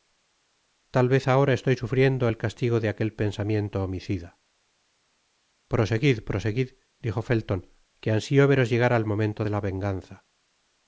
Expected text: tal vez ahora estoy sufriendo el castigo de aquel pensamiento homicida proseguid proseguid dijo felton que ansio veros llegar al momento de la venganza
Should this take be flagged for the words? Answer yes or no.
no